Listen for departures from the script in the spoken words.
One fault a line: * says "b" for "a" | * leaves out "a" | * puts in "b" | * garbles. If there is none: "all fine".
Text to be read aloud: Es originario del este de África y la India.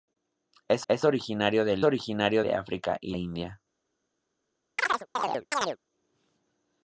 * puts in "es"
* says "originario" for "este"
* leaves out "la"